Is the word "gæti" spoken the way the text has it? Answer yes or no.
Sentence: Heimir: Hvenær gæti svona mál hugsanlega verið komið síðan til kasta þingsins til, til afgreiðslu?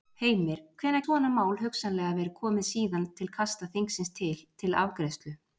no